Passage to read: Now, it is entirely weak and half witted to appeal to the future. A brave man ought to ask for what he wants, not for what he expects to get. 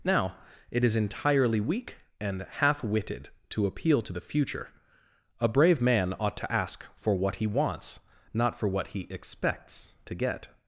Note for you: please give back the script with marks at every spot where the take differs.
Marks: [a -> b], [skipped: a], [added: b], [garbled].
Now, it is entirely weak and half witted to appeal to the future. A brave man ought to ask for what he wants, not for what he expects to get.